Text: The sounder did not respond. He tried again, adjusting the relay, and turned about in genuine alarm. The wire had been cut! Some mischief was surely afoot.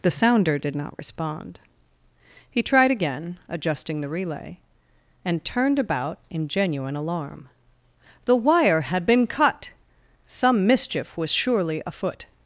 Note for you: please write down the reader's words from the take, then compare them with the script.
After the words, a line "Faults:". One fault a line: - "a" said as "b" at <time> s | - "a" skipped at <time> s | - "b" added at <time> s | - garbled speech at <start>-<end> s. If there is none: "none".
The sounder did not respond. He tried again, adjusting the relay, and turned about in genuine alarm. The wire had been cut! Some mischief was surely afoot.
Faults:
none